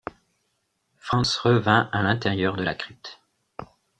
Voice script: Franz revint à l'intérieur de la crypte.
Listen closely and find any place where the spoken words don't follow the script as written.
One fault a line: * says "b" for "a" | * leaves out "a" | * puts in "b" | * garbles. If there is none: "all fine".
all fine